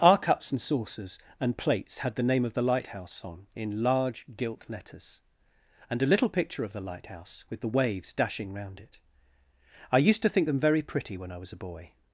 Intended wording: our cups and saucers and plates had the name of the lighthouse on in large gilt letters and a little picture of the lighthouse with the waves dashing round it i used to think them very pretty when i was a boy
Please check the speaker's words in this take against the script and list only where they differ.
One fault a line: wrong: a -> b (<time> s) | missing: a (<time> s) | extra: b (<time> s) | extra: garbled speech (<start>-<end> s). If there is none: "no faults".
no faults